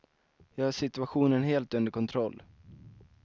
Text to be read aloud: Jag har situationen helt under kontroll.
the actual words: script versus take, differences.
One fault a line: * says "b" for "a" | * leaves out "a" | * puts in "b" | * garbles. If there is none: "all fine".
all fine